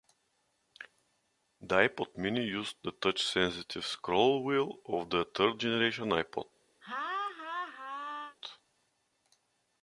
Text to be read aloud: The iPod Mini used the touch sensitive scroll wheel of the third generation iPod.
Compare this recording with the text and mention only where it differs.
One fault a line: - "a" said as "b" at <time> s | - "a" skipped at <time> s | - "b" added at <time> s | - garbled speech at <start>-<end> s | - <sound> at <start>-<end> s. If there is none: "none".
- laugh at 6.8-8.4 s